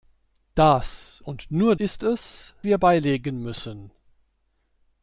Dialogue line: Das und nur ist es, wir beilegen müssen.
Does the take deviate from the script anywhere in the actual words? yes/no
no